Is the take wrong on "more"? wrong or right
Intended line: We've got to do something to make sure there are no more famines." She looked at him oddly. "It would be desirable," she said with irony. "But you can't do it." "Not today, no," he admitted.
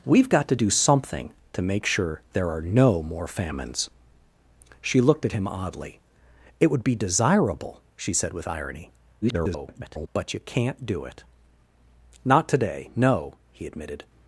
right